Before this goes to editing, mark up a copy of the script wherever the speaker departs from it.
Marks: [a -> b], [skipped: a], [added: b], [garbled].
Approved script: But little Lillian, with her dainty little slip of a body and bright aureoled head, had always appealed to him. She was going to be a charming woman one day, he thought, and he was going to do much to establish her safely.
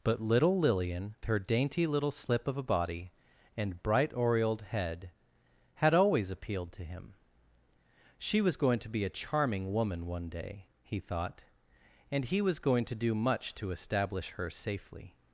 But little Lillian, [skipped: with] her dainty little slip of a body and bright aureoled head, had always appealed to him. She was going to be a charming woman one day, he thought, and he was going to do much to establish her safely.